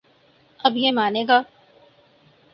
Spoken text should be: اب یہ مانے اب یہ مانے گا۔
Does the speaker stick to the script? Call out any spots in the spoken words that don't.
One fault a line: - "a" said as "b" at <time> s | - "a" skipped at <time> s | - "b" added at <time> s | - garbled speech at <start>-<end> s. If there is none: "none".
- "اب یہ مانے" skipped at 1.2 s